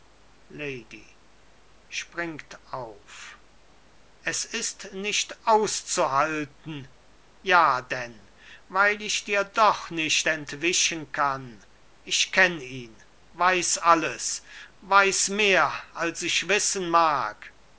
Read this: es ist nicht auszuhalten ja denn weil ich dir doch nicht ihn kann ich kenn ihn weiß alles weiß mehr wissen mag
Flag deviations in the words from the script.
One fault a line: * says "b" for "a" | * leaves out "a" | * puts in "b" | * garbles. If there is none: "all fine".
* says "entwischen" for "ihn"
* puts in "als ich"